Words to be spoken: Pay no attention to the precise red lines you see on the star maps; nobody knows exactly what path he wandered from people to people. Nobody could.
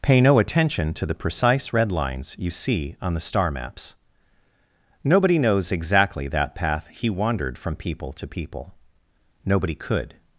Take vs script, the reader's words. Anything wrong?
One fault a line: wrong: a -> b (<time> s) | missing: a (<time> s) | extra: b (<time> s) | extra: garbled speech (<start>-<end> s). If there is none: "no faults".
wrong: what -> that (6.3 s)